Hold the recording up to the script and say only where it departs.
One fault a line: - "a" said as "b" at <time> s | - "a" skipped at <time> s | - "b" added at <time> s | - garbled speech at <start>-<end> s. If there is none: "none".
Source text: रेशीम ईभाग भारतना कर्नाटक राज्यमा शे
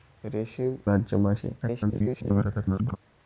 - "ईभाग भारतना कर्नाटक" skipped at 0.8 s
- garbled speech at 1.6-3.0 s